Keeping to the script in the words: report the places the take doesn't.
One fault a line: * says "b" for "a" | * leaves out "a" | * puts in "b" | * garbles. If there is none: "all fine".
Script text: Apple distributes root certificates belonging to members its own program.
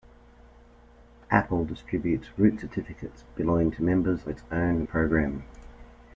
all fine